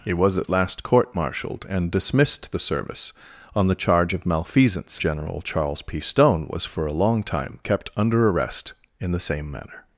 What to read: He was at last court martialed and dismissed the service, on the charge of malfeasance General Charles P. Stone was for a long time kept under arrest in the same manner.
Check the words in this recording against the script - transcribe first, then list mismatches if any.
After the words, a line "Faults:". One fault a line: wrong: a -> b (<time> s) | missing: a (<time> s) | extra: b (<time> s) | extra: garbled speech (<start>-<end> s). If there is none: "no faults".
He was at last court martialed and dismissed the service, on the charge of malfeasance General Charles P. Stone was for a long time kept under arrest in the same manner.
Faults:
no faults